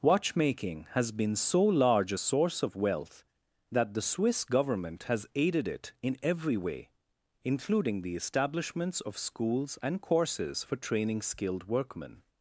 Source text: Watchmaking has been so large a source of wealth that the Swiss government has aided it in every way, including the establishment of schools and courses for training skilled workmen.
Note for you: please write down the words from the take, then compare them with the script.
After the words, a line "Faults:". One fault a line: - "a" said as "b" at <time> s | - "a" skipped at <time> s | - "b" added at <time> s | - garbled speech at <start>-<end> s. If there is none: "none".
Watchmaking has been so large a source of wealth that the Swiss government has aided it in every way, including the establishments of schools and courses for training skilled workmen.
Faults:
- "establishment" said as "establishments" at 8.1 s